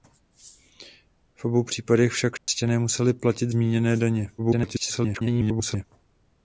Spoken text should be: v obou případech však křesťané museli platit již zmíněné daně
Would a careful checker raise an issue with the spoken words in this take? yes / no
yes